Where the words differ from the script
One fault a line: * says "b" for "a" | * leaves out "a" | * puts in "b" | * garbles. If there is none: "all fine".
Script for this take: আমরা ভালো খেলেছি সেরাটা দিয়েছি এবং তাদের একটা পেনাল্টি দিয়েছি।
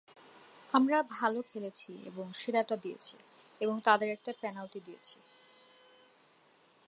* puts in "এবং"